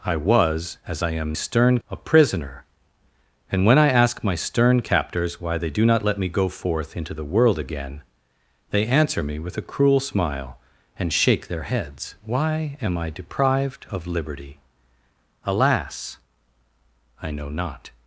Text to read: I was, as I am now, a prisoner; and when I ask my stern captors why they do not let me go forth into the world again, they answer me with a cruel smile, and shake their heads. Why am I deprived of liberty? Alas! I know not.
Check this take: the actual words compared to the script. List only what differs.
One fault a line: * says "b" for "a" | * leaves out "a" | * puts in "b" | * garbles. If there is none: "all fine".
* says "stern" for "now"